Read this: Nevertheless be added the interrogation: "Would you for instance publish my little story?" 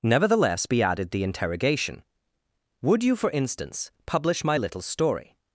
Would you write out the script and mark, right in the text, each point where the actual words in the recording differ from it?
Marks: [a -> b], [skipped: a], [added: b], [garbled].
Nevertheless be added the interrogation: "Would you for instance publish my little story?"